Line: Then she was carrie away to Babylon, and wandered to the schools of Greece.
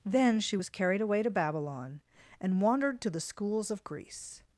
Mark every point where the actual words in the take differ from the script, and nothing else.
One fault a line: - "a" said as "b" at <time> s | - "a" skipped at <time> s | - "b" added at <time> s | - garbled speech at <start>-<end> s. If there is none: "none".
- "carrie" said as "carried" at 0.7 s